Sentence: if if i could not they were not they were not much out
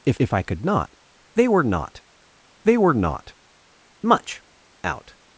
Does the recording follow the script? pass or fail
pass